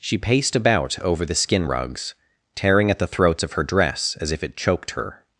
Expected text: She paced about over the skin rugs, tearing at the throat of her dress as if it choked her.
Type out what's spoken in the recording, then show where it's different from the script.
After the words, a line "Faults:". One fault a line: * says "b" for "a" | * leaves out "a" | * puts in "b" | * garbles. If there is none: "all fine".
She paced about over the skin rugs, tearing at the throats of her dress as if it choked her.
Faults:
* says "throats" for "throat"